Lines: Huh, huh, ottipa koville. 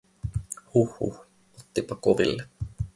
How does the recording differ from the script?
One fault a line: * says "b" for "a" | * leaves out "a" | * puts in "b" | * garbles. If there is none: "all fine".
all fine